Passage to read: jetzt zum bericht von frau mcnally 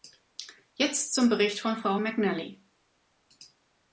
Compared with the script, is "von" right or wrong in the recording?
right